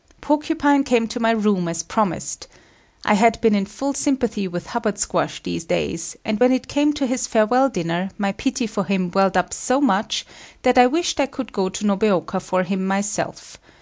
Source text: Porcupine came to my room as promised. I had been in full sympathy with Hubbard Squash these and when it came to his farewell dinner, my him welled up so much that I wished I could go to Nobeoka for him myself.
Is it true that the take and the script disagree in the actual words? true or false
true